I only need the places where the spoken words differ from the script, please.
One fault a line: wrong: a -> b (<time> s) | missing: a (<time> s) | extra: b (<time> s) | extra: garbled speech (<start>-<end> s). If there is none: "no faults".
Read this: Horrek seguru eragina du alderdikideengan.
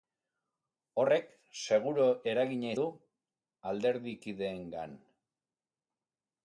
no faults